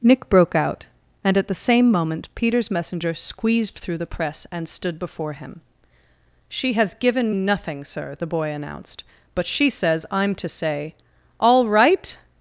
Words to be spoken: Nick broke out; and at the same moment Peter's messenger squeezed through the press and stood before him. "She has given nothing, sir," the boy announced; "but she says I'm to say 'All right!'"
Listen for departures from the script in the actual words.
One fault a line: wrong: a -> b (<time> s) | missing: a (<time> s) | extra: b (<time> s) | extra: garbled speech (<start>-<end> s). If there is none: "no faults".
no faults